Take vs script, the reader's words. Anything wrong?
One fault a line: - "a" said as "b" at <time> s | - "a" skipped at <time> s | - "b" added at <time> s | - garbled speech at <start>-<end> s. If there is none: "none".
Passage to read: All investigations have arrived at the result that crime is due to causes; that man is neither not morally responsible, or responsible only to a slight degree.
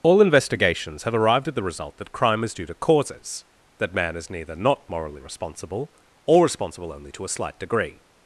none